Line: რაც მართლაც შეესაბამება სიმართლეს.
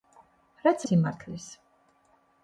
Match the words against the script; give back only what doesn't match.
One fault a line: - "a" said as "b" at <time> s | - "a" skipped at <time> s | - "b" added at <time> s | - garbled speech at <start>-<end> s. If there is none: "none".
- "მართლაც შეესაბამება" skipped at 0.8 s